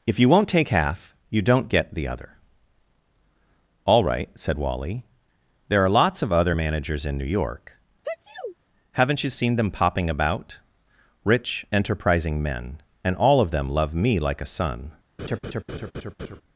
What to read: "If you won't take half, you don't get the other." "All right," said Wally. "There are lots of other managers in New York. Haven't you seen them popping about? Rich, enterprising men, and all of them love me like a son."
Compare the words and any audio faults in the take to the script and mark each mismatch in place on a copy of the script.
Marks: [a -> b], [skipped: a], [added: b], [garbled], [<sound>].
"If you won't take half, you don't get the other." "All right," said Wally. "There are lots of other managers in New York. [sneeze] Haven't you seen them popping about? Rich, enterprising men, and all of them love me like a son." [laugh]